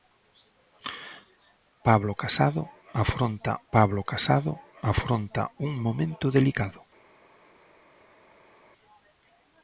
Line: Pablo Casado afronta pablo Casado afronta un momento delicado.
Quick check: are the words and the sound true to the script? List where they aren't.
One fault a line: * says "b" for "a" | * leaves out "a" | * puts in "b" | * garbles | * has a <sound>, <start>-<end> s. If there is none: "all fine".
all fine